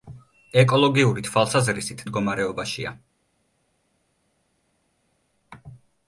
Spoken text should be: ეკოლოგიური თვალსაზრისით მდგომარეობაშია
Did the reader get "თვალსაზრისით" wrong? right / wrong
right